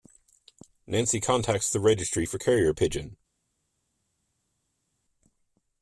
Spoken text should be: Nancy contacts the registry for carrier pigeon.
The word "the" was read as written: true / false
true